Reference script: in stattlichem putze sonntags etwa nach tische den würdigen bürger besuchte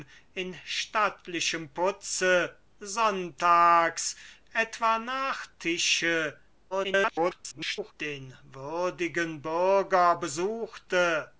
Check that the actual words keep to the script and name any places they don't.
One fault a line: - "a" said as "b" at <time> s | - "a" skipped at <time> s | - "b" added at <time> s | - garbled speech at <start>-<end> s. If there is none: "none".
- garbled speech at 6.7-7.9 s